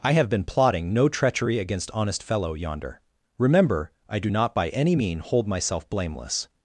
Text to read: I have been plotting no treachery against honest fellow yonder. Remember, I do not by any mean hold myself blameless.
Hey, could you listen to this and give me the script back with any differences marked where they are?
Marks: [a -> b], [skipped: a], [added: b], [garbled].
I have been plotting no treachery against honest fellow yonder. Remember, I do not by any mean hold myself blameless.